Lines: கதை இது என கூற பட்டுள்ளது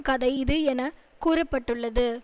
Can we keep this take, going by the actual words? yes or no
yes